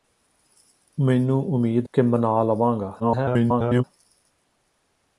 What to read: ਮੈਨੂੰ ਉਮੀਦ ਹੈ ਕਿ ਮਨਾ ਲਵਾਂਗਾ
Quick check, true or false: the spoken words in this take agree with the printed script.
false